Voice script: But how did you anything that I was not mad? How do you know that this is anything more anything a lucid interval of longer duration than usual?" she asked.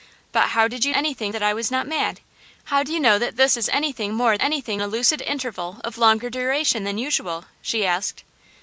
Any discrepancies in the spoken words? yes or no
no